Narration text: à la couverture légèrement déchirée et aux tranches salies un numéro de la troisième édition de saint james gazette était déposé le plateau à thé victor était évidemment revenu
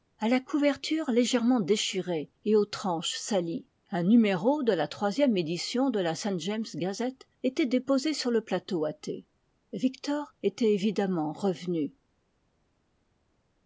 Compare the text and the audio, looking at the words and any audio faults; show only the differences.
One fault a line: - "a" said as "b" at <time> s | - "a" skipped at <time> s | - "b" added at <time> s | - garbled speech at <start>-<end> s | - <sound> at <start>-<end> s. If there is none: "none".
- "la" added at 6.0 s
- "sur" added at 8.2 s